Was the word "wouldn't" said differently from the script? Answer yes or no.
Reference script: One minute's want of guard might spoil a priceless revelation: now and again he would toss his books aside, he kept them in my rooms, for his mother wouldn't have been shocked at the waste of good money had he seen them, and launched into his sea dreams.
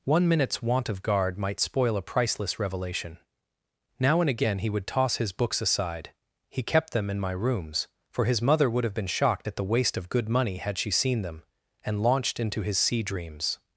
yes